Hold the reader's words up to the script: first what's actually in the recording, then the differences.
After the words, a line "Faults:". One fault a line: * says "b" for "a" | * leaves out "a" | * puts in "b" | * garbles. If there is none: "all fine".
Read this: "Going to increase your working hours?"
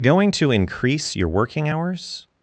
"Going to increase your working hours?"
Faults:
all fine